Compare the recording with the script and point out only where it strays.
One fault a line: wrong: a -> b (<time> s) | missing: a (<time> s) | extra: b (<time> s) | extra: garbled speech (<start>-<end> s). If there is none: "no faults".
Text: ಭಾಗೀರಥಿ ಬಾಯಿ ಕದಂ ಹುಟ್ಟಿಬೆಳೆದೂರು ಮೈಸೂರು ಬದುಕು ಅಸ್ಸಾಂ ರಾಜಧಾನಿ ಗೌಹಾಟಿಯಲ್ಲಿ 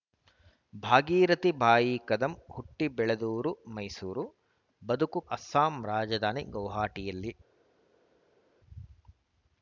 no faults